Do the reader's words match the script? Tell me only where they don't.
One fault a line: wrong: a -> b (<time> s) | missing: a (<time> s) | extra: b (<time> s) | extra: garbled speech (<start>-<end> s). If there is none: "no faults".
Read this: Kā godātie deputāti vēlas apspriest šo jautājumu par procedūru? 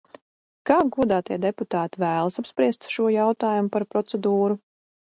no faults